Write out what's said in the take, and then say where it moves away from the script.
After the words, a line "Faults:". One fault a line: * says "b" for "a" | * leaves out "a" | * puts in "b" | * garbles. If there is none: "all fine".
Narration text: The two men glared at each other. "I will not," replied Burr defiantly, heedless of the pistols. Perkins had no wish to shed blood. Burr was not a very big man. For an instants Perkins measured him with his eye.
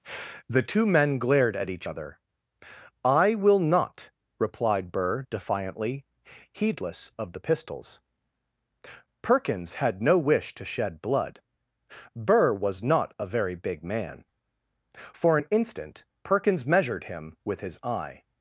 The two men glared at each other. "I will not," replied Burr defiantly, heedless of the pistols. Perkins had no wish to shed blood. Burr was not a very big man. For an instant Perkins measured him with his eye.
Faults:
* says "instant" for "instants"